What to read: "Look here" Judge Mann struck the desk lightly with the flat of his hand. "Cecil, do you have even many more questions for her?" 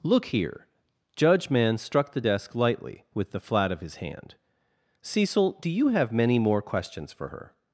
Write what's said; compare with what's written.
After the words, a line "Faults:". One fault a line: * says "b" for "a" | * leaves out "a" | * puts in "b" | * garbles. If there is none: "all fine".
"Look here" Judge Mann struck the desk lightly with the flat of his hand. "Cecil, do you have many more questions for her?"
Faults:
* leaves out "even"